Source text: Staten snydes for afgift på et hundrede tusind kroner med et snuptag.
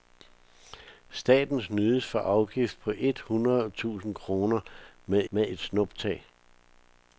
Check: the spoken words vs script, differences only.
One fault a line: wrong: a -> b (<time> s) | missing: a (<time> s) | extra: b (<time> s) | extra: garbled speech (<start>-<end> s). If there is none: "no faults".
extra: med (5.3 s)